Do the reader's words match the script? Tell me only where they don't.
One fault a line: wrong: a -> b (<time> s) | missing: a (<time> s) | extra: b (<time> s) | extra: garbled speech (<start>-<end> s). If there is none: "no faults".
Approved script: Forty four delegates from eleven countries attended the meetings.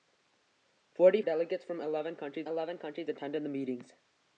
missing: four (1.2 s)
extra: eleven countries (2.4 s)